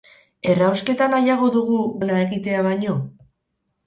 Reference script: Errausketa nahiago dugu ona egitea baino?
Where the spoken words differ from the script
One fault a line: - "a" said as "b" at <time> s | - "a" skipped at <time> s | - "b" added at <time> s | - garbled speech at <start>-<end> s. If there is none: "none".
none